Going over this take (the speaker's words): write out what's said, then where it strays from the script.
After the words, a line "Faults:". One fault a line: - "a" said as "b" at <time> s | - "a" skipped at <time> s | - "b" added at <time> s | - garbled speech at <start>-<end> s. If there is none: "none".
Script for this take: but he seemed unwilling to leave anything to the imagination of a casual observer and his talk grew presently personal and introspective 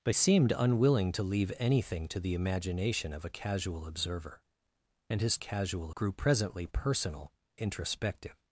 but seemed unwilling to leave anything to the imagination of a casual observer and his casual grew presently personal introspective
Faults:
- "he" skipped at 0.1 s
- "talk" said as "casual" at 5.4 s
- "and" skipped at 7.3 s